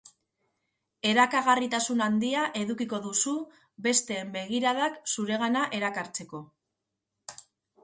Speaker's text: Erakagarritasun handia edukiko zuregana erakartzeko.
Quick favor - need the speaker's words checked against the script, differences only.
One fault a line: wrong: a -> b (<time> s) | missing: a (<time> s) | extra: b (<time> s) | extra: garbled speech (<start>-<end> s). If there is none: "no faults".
extra: duzu besteen begiradak (3.0 s)